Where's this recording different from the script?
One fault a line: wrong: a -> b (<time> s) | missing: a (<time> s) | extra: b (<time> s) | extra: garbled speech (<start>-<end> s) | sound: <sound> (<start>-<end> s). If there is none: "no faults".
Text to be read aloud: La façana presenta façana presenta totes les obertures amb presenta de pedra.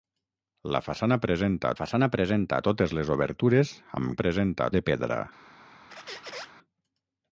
sound: squeak (5.9-6.5 s)